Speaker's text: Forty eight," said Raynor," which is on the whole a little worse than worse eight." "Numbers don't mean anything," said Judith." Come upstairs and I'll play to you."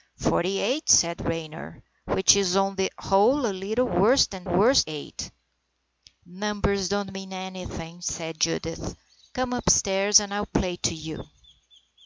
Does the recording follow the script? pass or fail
pass